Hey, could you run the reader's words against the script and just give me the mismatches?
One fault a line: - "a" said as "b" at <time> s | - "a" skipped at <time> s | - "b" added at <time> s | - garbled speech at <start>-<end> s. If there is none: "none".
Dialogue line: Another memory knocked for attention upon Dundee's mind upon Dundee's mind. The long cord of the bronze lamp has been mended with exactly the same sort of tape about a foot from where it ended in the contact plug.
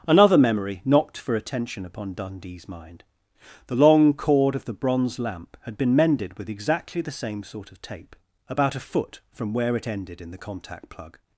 - "upon Dundee's mind" skipped at 3.0 s
- "has" said as "had" at 5.6 s